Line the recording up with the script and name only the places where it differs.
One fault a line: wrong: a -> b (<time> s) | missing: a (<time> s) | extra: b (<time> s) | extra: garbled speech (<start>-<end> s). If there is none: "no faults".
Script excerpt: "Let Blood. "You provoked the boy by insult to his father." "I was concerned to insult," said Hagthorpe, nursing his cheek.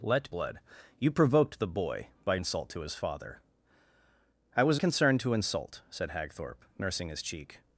no faults